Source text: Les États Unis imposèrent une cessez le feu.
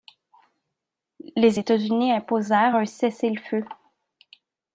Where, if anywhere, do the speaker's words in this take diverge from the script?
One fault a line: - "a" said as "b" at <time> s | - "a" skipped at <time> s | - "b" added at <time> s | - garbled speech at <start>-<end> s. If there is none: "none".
- "une" said as "un" at 2.7 s